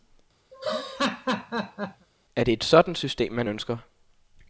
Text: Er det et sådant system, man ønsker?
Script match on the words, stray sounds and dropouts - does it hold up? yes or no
no